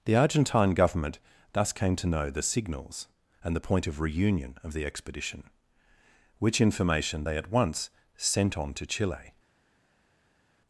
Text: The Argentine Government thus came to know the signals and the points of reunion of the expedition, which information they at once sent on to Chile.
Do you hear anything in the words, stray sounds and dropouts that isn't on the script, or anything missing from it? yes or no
yes